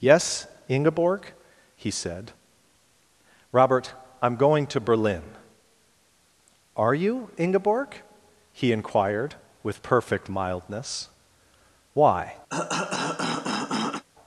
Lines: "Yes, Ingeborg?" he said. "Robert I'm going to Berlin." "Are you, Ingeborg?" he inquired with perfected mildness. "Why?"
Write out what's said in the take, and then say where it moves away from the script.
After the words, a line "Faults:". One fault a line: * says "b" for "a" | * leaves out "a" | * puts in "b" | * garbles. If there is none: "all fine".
"Yes, Ingeborg?" he said. "Robert I'm going to Berlin." "Are you, Ingeborg?" he inquired with perfect mildness. "Why?"
Faults:
* says "perfect" for "perfected"